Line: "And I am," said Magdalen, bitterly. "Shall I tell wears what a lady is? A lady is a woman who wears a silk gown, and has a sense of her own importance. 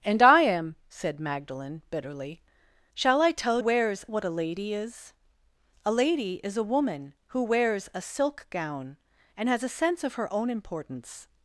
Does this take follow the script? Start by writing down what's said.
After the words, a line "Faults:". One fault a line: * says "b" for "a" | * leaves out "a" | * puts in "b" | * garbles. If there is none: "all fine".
"And I am," said Magdalen, bitterly. "Shall I tell wears what a lady is? A lady is a woman who wears a silk gown, and has a sense of her own importance.
Faults:
all fine